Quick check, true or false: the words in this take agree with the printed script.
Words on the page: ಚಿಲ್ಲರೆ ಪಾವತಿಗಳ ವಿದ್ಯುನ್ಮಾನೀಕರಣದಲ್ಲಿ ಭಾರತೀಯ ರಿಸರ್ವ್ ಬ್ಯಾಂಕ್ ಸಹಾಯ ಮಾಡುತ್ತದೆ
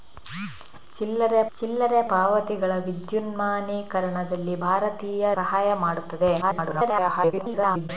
false